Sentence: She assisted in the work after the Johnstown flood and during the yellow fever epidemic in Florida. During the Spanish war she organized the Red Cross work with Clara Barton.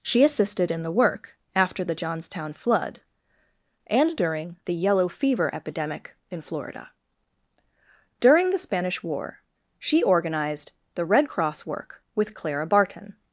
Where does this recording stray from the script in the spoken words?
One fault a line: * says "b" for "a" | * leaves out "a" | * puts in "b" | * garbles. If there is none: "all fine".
all fine